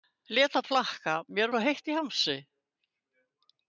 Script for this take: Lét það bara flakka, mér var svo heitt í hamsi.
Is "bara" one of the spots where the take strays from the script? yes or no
yes